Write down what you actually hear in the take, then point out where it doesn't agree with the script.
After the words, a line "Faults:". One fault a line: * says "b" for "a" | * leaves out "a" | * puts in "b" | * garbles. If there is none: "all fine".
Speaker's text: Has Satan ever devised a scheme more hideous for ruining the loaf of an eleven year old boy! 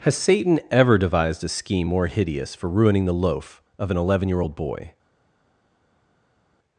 Has Satan ever devised a scheme more hideous for ruining the loaf of an eleven year old boy!
Faults:
all fine